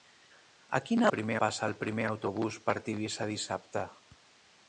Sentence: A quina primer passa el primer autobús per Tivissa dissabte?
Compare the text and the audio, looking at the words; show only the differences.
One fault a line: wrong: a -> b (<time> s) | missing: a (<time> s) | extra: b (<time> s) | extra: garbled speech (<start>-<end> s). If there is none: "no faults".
no faults